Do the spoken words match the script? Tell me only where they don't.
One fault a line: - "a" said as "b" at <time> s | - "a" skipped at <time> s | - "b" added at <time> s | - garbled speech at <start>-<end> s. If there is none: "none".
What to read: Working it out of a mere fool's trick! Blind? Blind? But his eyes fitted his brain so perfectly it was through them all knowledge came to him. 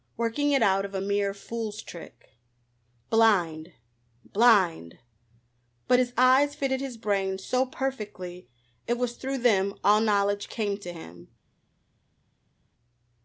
none